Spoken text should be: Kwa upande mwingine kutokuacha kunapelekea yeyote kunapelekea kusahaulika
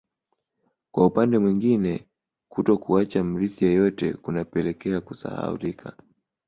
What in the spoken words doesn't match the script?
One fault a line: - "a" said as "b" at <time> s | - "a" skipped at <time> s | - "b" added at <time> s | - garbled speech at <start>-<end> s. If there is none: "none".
- "kunapelekea" said as "mrithi" at 3.2 s